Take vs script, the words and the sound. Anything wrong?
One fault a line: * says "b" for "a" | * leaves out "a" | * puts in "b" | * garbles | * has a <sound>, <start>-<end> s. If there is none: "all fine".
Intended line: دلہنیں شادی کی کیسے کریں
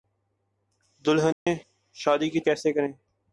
* has a dropout, 1.3-1.5 s